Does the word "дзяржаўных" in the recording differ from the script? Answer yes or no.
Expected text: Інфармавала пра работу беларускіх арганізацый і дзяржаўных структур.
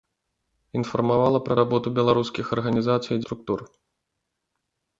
yes